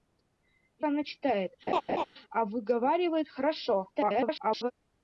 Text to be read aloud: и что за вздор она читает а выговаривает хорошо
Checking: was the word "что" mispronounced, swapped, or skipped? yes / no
yes